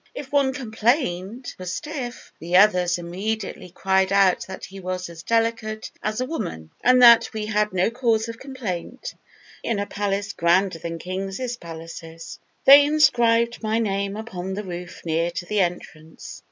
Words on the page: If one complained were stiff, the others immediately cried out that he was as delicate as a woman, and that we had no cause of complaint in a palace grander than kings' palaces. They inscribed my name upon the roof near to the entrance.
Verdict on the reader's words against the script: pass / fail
pass